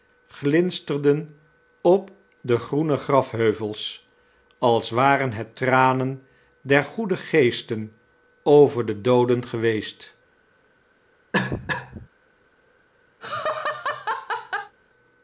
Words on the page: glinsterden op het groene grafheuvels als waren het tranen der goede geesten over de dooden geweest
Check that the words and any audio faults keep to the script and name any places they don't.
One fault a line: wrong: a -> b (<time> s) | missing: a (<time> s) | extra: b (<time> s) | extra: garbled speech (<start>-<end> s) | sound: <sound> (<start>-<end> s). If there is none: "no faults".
wrong: het -> de (2.4 s)
sound: cough (11.3-12.1 s)
sound: laugh (13.2-14.8 s)